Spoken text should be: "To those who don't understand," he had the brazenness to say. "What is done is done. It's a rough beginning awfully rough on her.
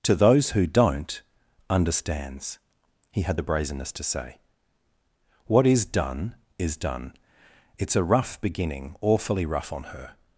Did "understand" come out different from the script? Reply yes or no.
yes